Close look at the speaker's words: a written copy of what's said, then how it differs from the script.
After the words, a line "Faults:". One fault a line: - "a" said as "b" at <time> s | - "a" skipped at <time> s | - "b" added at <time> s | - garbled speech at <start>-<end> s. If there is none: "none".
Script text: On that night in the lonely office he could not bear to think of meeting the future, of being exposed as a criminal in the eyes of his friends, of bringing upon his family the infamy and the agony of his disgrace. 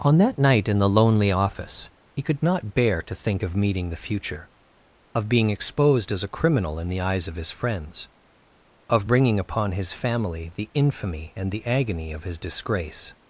On that night in the lonely office he could not bear to think of meeting the future, of being exposed as a criminal in the eyes of his friends, of bringing upon his family the infamy and the agony of his disgrace.
Faults:
none